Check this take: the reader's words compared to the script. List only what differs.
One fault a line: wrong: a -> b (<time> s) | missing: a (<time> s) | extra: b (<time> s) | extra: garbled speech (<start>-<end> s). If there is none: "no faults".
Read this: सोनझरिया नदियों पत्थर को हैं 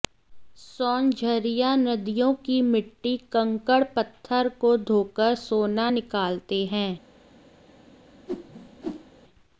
extra: की मिट्टी कंकड़ (2.5 s)
extra: धोकर सोना निकालते (4.9 s)